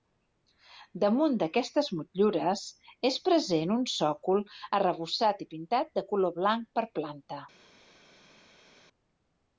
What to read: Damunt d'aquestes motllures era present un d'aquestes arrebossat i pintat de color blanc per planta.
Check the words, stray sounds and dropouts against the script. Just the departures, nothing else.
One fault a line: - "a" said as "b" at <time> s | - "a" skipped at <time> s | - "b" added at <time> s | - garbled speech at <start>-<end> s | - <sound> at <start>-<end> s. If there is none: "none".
- "era" said as "és" at 3.1 s
- "d'aquestes" said as "sòcol" at 4.0 s